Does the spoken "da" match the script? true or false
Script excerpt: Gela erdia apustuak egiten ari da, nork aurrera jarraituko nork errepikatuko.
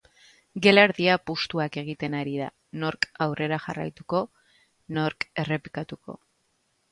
true